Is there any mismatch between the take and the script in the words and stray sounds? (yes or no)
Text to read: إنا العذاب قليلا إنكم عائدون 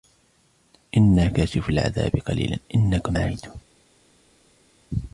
yes